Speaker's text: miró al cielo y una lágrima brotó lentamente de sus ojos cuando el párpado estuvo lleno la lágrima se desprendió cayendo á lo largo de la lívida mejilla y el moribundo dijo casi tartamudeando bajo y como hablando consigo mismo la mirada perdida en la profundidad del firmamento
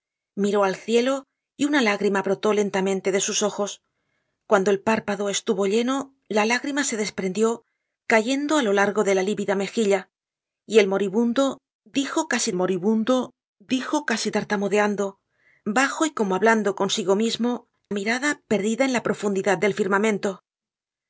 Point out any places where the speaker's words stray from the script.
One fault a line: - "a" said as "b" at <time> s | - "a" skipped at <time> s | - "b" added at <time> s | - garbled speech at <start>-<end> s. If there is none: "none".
- "moribundo dijo casi" added at 12.5 s
- "la" skipped at 17.7 s